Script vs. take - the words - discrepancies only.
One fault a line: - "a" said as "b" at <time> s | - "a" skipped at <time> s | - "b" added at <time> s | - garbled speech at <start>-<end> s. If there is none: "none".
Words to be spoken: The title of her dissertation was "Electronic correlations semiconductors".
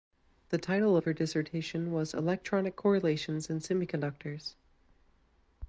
- "in" added at 3.5 s